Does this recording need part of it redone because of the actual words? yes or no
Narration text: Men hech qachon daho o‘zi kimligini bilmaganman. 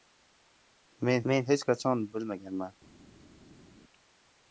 yes